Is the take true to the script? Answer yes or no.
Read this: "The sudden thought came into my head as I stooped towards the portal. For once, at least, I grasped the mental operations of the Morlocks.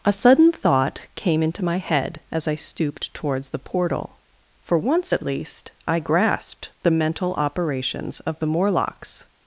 no